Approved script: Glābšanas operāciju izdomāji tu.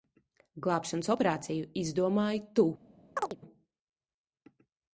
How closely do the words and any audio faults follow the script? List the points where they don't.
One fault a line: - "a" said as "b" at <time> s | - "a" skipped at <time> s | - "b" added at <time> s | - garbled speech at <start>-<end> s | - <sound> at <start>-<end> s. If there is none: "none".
- chirp at 3.2-3.4 s